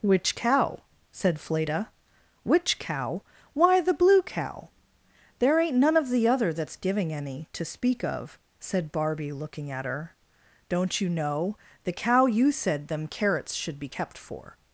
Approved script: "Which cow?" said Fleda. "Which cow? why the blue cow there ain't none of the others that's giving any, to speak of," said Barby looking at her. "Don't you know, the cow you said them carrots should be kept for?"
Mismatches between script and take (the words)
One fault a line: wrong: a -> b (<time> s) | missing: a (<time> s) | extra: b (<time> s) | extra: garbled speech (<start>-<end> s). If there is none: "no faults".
wrong: others -> other (6.3 s)